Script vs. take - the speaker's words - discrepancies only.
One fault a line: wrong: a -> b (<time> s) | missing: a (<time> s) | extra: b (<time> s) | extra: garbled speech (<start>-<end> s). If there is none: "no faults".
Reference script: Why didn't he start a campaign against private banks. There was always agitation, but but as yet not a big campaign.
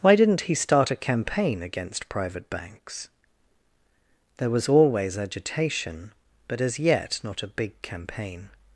missing: but (6.6 s)